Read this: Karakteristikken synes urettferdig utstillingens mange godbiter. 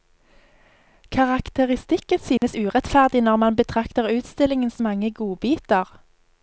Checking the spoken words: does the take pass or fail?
fail